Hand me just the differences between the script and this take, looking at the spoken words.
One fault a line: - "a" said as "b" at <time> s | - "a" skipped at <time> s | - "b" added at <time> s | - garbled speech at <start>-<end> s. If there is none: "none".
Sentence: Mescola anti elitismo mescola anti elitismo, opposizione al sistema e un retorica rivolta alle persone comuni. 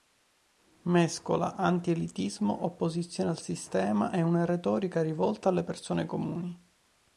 - "mescola anti elitismo" skipped at 2.6 s
- "un" said as "una" at 4.2 s